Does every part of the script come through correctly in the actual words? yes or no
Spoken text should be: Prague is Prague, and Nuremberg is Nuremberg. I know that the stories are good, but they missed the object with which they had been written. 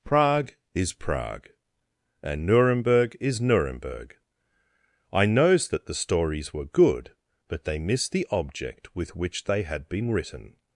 no